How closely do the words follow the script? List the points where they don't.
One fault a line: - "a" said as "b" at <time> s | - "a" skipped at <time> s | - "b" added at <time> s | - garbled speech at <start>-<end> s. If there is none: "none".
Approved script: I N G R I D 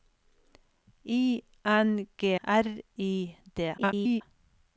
- "R" skipped at 2.4 s
- garbled speech at 3.8-4.2 s